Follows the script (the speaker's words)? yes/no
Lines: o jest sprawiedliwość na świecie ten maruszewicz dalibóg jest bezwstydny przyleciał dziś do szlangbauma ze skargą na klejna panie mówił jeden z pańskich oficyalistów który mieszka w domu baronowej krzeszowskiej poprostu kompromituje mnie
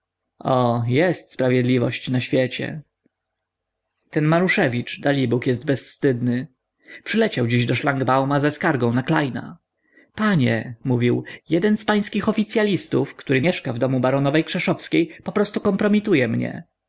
yes